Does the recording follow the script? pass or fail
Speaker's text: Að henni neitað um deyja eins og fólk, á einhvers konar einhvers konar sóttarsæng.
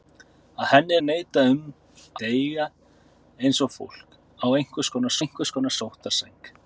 pass